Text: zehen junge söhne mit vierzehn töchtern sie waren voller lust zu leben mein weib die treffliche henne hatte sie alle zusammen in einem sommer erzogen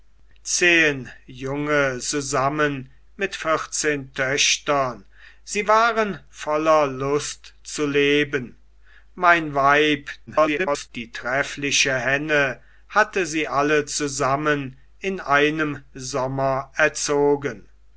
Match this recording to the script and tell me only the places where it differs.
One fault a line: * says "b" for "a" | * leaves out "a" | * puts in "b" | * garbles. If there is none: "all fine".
* says "zusammen" for "söhne"
* garbles